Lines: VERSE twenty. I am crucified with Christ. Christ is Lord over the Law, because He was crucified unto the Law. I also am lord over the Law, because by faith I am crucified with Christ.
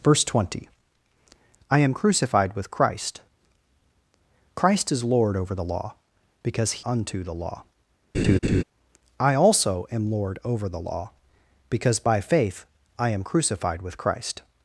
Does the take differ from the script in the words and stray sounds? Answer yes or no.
yes